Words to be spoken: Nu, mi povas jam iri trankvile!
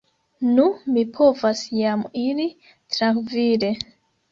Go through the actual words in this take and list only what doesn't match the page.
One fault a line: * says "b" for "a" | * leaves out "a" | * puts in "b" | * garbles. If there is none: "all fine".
all fine